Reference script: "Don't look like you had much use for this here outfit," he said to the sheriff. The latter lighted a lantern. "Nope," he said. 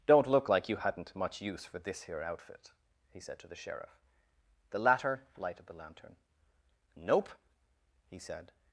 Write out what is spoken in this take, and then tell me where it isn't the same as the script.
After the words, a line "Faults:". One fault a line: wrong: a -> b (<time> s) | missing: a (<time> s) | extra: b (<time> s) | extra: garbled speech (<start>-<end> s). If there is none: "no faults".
"Don't look like you hadn't much use for this here outfit," he said to the sheriff. The latter lighted the lantern. "Nope," he said.
Faults:
wrong: had -> hadn't (0.8 s)
wrong: a -> the (5.7 s)